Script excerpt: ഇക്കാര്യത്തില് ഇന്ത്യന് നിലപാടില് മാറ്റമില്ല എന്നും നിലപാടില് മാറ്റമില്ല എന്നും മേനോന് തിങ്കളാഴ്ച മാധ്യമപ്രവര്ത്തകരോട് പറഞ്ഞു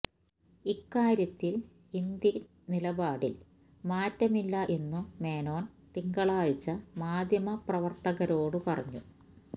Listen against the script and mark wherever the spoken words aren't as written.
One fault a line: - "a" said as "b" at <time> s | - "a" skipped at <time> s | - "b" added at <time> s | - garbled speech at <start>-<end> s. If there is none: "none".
- "നിലപാടില് മാറ്റമില്ല എന്നും" skipped at 5.1 s